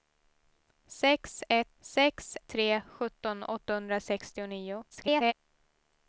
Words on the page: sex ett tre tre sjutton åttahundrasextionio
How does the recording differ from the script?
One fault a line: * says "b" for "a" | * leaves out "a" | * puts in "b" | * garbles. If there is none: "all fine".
* says "sex" for "tre"
* garbles